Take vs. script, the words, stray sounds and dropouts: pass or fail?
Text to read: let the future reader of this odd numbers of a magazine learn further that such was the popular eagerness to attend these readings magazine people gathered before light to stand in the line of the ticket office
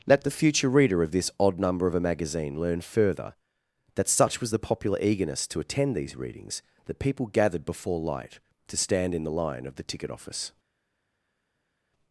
fail